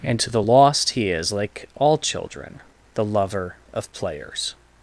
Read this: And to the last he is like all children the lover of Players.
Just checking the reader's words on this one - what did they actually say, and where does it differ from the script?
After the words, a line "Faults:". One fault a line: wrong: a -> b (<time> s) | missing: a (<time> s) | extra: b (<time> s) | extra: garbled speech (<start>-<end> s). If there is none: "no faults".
And to the lost he is like all children the lover of Players.
Faults:
wrong: last -> lost (0.4 s)